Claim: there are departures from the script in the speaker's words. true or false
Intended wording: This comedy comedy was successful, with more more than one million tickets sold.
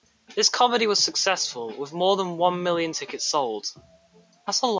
true